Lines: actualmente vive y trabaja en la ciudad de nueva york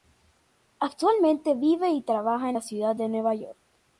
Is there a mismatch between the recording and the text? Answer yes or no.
no